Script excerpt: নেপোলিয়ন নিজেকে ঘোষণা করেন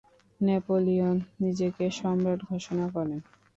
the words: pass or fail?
fail